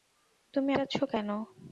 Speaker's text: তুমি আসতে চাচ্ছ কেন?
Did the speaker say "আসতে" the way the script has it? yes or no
no